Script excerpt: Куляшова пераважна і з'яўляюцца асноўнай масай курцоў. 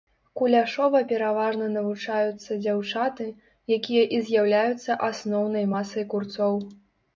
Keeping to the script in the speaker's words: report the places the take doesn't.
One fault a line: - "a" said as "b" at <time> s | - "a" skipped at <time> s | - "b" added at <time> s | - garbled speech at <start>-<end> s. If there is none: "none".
- "навучаюцца дзяўчаты якія" added at 1.7 s